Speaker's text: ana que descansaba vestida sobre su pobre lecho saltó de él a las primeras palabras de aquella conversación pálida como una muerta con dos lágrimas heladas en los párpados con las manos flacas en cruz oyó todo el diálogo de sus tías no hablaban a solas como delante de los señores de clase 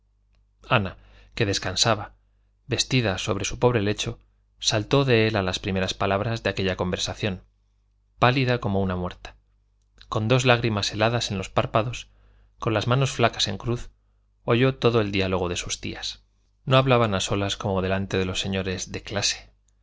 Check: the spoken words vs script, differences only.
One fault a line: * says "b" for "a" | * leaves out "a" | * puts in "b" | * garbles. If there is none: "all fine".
all fine